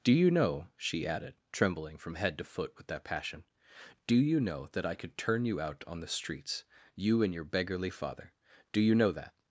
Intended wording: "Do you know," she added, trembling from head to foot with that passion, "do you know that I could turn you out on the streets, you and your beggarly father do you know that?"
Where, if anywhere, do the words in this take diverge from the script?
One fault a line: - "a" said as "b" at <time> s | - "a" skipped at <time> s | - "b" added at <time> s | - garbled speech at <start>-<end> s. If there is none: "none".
none